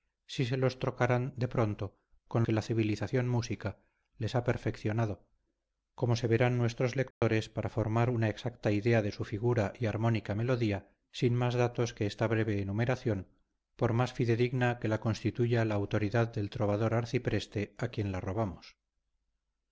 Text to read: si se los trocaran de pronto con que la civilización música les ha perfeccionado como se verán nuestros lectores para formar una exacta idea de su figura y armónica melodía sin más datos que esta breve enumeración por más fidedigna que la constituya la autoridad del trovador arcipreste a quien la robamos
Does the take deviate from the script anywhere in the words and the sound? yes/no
yes